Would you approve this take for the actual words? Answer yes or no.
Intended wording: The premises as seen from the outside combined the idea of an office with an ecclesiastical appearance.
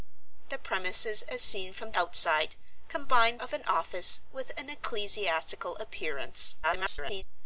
no